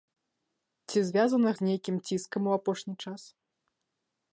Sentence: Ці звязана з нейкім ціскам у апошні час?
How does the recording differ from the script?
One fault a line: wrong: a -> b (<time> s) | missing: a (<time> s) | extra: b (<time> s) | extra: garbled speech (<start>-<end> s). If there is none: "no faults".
no faults